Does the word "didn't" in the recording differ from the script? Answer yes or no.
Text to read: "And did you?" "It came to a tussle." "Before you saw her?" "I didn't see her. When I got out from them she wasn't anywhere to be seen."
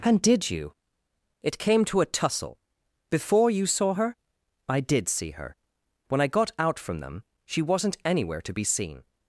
yes